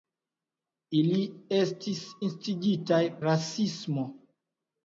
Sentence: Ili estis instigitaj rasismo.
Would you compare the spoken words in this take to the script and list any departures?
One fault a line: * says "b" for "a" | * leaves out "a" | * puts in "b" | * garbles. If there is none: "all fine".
all fine